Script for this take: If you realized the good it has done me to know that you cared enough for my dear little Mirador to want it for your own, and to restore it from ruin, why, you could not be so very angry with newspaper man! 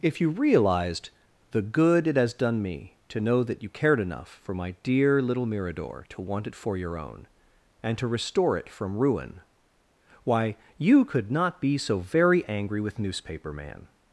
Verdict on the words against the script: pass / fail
pass